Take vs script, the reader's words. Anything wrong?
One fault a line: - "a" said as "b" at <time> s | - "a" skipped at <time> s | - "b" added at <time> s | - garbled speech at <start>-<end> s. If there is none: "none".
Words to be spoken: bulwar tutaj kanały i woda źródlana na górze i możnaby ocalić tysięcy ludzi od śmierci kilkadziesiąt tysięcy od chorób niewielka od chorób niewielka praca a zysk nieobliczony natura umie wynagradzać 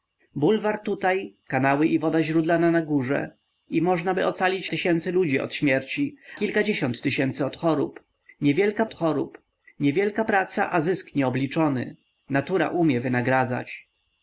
none